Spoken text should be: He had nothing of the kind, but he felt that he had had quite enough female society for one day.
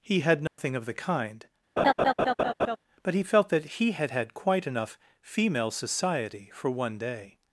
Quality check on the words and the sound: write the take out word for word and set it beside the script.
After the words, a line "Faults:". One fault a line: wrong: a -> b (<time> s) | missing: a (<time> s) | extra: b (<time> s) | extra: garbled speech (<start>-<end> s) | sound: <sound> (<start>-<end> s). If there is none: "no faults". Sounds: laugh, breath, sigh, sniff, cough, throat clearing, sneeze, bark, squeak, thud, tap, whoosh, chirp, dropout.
He had nothing of the kind, but he felt that he had had quite enough female society for one day.
Faults:
sound: dropout (0.5-0.6 s)
sound: laugh (1.8-2.8 s)